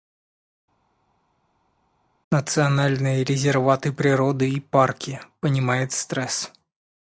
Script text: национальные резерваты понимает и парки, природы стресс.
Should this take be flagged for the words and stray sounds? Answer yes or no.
yes